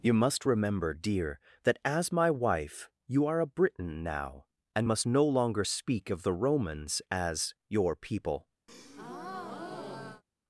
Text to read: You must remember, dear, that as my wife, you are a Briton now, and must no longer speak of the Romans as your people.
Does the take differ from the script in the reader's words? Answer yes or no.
no